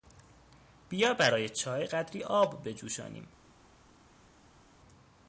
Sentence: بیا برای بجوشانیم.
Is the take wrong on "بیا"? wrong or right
right